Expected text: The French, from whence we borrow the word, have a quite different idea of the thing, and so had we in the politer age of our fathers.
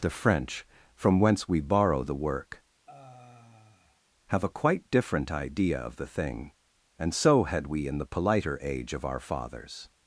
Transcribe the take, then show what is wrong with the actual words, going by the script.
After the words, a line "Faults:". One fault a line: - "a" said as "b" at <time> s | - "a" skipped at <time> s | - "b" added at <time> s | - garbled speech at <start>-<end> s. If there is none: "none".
The French, from whence we borrow the work, have a quite different idea of the thing, and so had we in the politer age of our fathers.
Faults:
- "word" said as "work" at 2.1 s